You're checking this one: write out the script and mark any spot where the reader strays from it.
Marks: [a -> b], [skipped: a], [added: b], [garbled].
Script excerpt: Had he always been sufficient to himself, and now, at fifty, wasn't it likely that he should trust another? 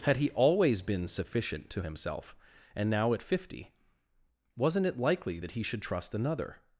Had he always been sufficient to himself, and now, at fifty, wasn't it likely that he should trust another?